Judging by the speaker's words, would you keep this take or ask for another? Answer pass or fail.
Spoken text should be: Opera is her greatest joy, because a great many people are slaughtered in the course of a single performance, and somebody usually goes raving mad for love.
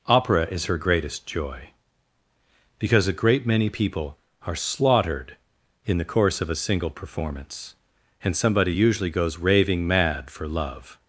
pass